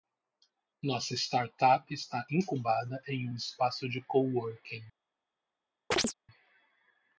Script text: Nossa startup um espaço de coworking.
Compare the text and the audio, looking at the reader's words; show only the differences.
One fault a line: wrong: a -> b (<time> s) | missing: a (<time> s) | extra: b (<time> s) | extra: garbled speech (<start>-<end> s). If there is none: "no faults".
extra: está incubada em (1.9 s)